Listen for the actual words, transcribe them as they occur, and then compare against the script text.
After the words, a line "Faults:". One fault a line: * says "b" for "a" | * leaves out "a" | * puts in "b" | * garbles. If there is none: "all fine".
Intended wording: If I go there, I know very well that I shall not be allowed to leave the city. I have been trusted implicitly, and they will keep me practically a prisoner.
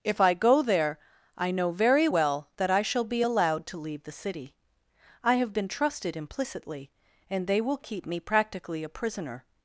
If I go there, I know very well that I shall be allowed to leave the city. I have been trusted implicitly, and they will keep me practically a prisoner.
Faults:
* leaves out "not"